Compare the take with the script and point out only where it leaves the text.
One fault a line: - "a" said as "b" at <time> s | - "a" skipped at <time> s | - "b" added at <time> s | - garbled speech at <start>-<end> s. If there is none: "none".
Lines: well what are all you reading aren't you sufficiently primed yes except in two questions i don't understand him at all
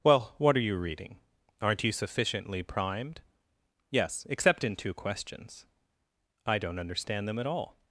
- "all" skipped at 0.6 s
- "him" said as "them" at 7.3 s